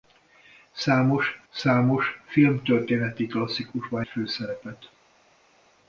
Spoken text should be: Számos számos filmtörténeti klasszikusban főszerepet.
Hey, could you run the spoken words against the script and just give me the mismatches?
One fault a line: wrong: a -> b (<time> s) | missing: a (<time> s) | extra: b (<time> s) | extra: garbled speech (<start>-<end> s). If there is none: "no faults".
no faults